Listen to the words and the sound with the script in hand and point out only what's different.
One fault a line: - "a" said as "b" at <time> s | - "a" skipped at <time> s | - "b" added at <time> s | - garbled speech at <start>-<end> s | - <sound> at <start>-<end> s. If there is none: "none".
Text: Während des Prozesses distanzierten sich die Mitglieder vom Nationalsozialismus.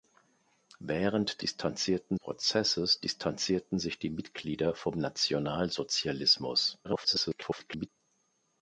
- "des" said as "distanzierten" at 1.4 s
- garbled speech at 6.8-7.9 s